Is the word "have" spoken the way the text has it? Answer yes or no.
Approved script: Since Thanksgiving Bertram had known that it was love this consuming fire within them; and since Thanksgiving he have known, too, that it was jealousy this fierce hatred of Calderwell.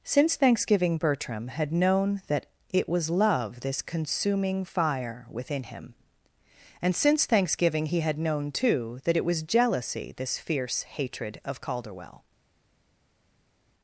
no